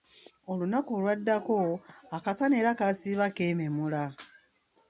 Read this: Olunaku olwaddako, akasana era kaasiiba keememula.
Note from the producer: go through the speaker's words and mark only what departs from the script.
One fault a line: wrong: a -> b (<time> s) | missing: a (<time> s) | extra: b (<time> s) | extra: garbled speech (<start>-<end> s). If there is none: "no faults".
no faults